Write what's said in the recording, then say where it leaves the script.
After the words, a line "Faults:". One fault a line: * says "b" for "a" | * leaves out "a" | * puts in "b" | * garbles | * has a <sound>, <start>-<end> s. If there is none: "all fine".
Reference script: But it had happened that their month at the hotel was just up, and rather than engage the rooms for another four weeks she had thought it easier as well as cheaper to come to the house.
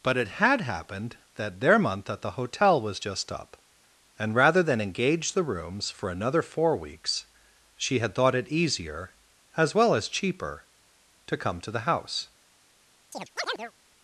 But it had happened that their month at the hotel was just up, and rather than engage the rooms for another four weeks she had thought it easier as well as cheaper to come to the house.
Faults:
* has a chirp, 13.1-13.7 s